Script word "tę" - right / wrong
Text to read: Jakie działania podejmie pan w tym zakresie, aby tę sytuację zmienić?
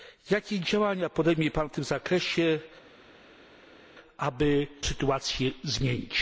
wrong